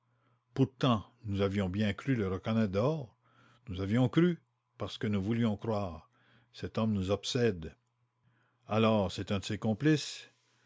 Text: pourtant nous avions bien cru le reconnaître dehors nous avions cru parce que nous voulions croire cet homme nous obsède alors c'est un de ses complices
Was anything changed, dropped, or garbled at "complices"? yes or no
no